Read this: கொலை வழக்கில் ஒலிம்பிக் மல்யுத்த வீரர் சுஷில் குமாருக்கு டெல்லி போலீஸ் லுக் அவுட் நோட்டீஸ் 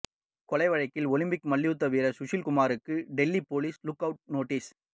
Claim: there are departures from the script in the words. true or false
false